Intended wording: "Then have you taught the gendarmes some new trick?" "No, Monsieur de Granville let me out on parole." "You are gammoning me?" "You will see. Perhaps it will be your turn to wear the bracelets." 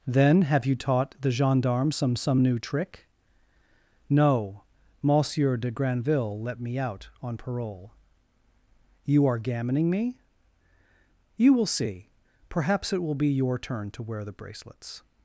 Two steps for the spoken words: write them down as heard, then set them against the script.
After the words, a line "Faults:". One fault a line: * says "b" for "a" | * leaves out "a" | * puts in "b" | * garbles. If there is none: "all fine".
"Then have you taught the gendarmes some some new trick?" "No, Monsieur de Granville let me out on parole." "You are gammoning me?" "You will see. Perhaps it will be your turn to wear the bracelets."
Faults:
* puts in "some"